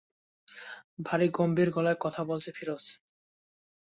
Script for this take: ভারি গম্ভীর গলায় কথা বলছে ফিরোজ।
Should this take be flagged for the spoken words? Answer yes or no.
no